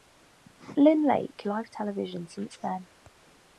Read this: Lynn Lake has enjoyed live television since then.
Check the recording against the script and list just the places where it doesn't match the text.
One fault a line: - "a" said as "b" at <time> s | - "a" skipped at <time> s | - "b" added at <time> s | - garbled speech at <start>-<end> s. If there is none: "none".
- "has enjoyed" skipped at 1.4 s